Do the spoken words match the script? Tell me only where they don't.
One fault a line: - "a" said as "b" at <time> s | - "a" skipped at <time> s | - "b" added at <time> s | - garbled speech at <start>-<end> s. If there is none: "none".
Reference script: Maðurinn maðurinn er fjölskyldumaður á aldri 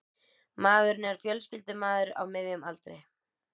- "maðurinn" skipped at 1.1 s
- "miðjum" added at 2.4 s